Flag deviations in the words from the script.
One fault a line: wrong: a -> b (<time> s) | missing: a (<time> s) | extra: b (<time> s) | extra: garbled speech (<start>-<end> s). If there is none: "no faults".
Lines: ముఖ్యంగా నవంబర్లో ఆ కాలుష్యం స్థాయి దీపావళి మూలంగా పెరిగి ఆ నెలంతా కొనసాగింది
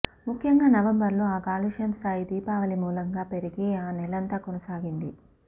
no faults